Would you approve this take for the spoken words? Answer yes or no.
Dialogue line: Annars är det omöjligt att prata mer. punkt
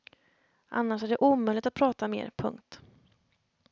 yes